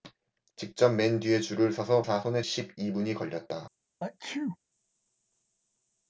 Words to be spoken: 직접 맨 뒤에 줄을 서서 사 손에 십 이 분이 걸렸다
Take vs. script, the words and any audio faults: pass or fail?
fail